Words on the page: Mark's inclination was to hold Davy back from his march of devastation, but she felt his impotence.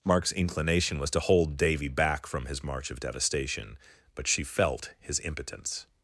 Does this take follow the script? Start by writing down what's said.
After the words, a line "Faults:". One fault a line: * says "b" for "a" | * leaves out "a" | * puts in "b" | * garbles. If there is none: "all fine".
Mark's inclination was to hold Davy back from his march of devastation, but she felt his impotence.
Faults:
all fine